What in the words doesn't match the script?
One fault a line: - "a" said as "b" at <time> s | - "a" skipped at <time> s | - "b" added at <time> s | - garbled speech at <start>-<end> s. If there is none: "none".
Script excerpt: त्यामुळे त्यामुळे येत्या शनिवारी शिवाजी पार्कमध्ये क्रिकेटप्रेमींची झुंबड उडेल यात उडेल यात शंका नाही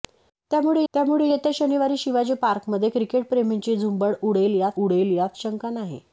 none